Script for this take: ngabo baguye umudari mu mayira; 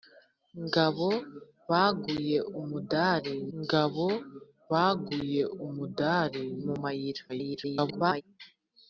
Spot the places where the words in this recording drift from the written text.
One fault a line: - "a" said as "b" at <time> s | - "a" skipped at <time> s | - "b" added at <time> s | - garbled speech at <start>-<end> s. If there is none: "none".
- "ngabo baguye umudari" added at 3.6 s
- garbled speech at 7.3-8.2 s